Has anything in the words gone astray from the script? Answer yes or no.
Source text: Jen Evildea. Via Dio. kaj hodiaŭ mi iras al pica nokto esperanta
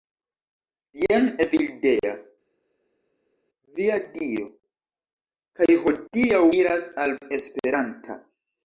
yes